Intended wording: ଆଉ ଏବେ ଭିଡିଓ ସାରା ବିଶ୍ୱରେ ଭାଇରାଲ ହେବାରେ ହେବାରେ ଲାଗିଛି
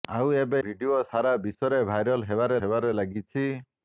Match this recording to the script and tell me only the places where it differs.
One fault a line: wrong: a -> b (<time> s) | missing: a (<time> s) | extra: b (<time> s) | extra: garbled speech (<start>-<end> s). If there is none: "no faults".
no faults